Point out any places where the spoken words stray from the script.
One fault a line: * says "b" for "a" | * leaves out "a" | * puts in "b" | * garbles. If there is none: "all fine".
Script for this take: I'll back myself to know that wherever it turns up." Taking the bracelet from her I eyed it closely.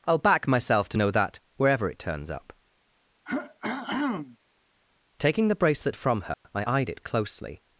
all fine